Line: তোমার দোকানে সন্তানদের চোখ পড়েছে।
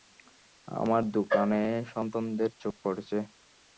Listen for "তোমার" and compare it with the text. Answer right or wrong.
wrong